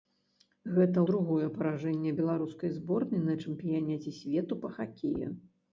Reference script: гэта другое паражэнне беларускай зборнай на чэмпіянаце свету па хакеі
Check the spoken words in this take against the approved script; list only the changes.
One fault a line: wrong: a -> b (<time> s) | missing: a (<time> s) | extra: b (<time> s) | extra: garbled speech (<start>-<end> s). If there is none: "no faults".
no faults